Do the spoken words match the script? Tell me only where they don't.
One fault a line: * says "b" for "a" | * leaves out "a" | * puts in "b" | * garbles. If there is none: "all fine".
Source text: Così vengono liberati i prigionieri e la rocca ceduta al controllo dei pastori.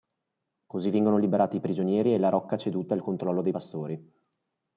all fine